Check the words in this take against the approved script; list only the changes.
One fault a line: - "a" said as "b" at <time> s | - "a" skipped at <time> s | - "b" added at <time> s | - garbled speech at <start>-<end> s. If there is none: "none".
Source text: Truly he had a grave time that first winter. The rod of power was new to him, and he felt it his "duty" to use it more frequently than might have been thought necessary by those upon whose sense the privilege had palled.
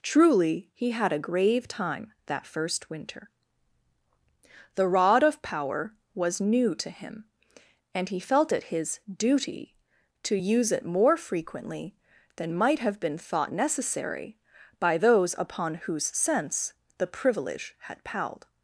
none